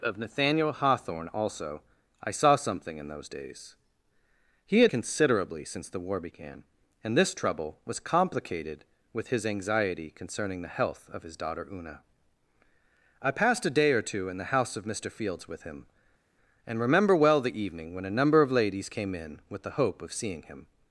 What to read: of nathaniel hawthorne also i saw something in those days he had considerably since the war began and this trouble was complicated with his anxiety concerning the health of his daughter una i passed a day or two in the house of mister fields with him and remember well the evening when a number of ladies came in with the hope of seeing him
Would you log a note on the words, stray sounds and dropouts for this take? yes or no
no